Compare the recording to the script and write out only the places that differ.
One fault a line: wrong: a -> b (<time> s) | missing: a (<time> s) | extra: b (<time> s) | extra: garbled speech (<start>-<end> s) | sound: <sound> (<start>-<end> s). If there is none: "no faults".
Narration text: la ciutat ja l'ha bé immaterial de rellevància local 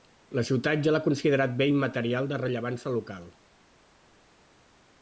extra: considerat (1.1 s)